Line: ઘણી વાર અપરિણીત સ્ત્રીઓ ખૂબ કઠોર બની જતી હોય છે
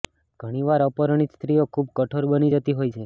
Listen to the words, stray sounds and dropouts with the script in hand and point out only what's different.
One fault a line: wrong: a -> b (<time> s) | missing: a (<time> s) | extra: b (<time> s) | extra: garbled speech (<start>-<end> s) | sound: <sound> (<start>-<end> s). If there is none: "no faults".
no faults